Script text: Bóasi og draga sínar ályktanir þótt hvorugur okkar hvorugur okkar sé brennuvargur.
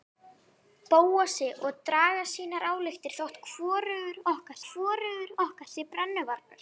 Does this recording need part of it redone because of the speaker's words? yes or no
no